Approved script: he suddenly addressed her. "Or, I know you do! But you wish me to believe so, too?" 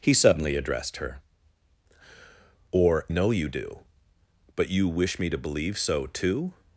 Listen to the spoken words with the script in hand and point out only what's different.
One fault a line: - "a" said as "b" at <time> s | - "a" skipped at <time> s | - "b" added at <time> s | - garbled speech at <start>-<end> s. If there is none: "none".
- "I" skipped at 3.1 s